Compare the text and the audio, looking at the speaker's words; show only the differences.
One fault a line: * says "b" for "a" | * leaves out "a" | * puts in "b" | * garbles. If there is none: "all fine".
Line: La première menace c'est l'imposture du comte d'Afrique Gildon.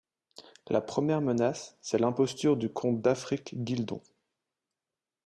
all fine